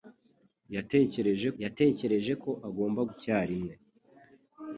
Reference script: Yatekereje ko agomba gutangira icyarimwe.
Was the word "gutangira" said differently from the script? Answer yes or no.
yes